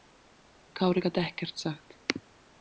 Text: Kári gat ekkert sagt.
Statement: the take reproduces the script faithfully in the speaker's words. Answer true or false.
true